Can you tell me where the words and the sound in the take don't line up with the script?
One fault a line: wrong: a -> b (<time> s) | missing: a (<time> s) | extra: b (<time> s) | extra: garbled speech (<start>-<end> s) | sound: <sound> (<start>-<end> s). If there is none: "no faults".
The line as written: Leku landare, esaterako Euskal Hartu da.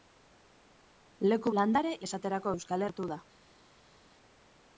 no faults